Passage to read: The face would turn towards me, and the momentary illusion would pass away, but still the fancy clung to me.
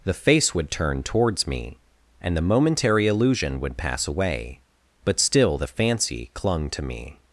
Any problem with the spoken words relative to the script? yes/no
no